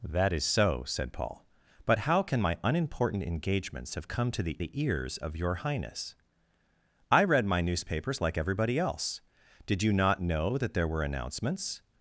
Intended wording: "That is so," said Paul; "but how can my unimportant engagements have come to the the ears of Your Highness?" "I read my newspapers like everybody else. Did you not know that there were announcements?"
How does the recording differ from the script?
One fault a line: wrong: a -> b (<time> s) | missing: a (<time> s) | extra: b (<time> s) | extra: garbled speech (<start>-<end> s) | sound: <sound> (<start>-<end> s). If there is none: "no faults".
no faults